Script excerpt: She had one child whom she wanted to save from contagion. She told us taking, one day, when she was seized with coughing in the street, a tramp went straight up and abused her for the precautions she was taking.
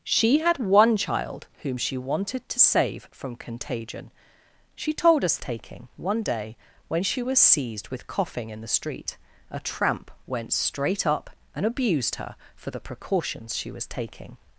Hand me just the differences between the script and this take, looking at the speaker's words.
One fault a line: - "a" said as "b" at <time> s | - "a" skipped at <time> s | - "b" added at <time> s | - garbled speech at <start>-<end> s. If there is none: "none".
none